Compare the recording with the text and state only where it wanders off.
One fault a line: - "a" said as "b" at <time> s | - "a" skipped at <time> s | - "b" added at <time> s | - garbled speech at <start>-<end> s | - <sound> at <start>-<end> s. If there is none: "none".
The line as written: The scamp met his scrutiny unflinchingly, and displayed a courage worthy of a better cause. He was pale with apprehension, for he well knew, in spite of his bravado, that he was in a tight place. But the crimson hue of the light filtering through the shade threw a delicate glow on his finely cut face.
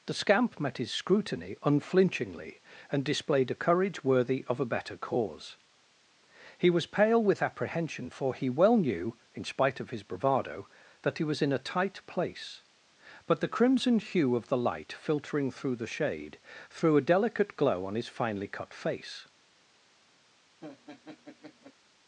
- laugh at 20.6-21.7 s